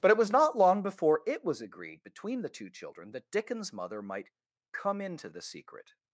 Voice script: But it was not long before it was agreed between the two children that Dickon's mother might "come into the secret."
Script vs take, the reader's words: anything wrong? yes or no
no